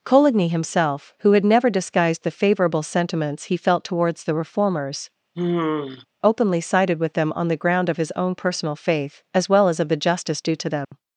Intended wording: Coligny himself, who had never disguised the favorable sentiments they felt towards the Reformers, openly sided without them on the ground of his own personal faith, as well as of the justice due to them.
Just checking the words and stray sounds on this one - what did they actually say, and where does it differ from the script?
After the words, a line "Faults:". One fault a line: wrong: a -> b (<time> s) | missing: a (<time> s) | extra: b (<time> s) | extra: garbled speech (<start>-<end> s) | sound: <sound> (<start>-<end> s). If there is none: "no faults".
Coligny himself, who had never disguised the favorable sentiments he felt towards the Reformers, openly sided with them on the ground of his own personal faith, as well as of the justice due to them.
Faults:
wrong: they -> he (3.5 s)
sound: sigh (5.3-6.1 s)
wrong: without -> with (7.0 s)
sound: dropout (10.8-10.9 s)